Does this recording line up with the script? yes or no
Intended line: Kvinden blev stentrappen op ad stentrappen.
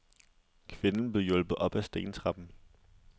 no